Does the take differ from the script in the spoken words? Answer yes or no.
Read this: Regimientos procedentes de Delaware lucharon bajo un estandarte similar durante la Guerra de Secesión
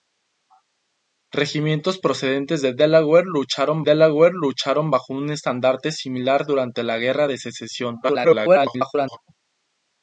yes